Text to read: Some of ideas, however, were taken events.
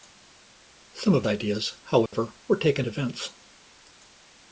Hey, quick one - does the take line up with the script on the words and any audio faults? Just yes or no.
no